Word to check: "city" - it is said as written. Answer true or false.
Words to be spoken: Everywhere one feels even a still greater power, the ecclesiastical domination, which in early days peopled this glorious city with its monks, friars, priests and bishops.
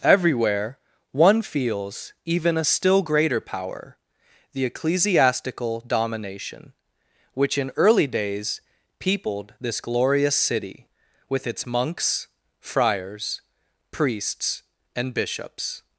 true